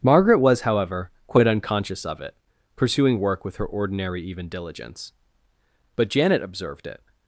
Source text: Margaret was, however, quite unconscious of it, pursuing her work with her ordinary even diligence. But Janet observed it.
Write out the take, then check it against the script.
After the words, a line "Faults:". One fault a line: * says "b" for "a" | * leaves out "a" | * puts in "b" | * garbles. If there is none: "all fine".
Margaret was, however, quite unconscious of it, pursuing work with her ordinary even diligence. But Janet observed it.
Faults:
* leaves out "her"